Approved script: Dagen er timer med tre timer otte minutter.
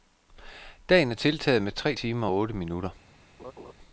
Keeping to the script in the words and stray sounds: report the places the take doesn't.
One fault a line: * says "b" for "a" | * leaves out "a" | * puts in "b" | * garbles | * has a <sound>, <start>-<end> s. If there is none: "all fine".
* says "tiltaget" for "timer"
* puts in "og"
* has a laugh, 3.4-3.7 s